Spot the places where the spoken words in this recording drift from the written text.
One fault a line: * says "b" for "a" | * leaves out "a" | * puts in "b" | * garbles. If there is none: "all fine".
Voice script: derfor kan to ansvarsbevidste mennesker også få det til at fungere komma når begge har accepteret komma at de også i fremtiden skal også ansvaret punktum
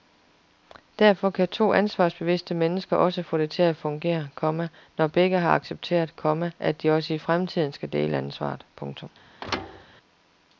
* says "dele" for "også"